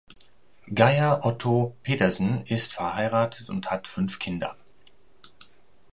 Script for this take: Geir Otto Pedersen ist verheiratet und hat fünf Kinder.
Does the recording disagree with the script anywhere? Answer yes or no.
no